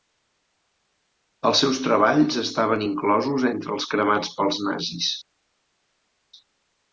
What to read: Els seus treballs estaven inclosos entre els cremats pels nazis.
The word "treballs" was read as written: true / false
true